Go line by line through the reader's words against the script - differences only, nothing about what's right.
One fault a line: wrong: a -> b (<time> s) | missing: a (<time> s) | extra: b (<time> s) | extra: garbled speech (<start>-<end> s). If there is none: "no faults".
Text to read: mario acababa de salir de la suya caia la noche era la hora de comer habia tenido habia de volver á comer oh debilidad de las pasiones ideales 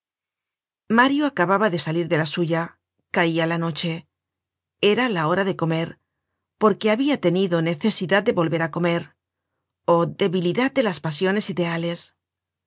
extra: porque (6.6 s)
wrong: habia -> necesidad (7.7 s)